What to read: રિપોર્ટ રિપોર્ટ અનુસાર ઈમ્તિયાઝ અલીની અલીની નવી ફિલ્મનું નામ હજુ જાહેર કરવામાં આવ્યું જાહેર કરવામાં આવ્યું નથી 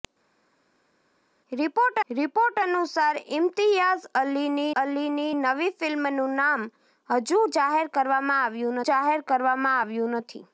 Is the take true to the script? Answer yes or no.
yes